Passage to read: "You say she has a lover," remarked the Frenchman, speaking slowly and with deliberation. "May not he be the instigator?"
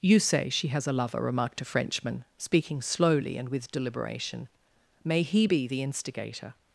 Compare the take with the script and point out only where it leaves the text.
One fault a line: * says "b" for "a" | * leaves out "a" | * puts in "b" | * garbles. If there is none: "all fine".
* says "a" for "the"
* leaves out "not"